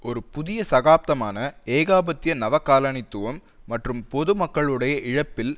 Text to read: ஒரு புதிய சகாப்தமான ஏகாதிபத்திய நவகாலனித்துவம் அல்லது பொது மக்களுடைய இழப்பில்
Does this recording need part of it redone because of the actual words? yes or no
yes